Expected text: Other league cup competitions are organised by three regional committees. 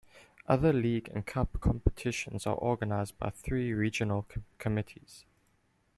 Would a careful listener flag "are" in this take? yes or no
no